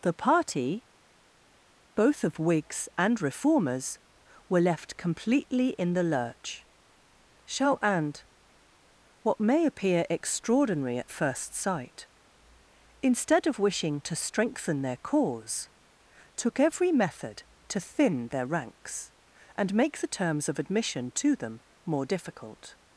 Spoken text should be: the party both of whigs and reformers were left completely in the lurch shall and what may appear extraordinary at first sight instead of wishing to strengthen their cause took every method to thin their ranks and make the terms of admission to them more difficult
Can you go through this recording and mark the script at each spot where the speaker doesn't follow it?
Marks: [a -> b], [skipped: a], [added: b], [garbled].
the party both of whigs and reformers were left completely in the lurch shall and what may appear extraordinary at first sight instead of wishing to strengthen their cause took every method to thin their ranks and make the terms of admission to them more difficult